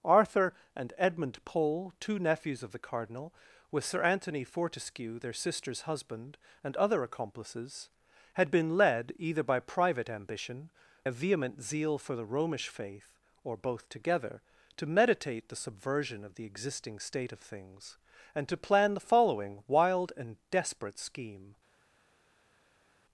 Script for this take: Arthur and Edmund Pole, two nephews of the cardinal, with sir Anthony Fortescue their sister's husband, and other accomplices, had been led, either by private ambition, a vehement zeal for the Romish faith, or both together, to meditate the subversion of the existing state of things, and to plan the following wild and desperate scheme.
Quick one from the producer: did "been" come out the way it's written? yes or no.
yes